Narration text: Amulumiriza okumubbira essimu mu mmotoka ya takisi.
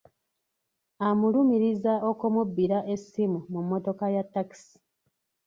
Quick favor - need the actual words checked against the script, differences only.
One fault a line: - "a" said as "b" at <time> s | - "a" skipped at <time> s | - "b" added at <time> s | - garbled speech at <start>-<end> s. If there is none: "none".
none